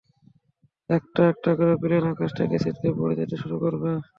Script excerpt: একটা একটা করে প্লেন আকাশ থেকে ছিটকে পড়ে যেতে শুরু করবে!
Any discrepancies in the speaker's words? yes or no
no